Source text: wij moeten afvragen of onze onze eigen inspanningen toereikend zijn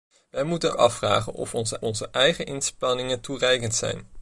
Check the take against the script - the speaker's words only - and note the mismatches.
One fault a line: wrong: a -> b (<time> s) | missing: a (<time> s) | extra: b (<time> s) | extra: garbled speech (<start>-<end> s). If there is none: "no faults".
no faults